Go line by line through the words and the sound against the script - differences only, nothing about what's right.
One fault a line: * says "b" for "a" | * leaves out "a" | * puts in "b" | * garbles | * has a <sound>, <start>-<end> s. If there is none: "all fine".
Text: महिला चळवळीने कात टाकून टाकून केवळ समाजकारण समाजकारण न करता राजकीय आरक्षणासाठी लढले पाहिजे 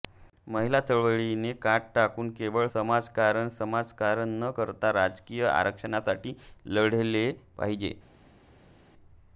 * leaves out "टाकून"